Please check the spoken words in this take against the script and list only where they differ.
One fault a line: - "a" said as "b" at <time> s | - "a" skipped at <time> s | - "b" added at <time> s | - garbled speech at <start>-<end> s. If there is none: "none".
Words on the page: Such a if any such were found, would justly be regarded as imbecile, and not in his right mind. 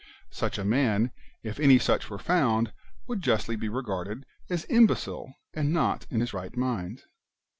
- "man" added at 0.7 s